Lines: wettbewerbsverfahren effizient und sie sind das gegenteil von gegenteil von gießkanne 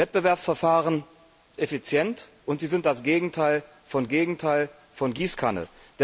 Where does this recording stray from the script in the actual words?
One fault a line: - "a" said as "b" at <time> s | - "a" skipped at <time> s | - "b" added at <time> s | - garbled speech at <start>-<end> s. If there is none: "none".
none